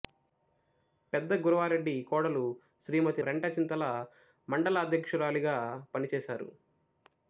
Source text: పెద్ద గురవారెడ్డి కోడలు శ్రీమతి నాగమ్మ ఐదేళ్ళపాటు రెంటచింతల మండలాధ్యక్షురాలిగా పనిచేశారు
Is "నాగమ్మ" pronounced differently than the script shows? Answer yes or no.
yes